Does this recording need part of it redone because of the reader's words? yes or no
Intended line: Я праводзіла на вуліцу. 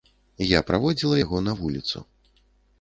yes